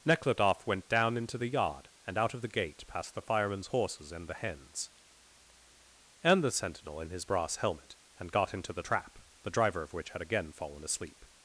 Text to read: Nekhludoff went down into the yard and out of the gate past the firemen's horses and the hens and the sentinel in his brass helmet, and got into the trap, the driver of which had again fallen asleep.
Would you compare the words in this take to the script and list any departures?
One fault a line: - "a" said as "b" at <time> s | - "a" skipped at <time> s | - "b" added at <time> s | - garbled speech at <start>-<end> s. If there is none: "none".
none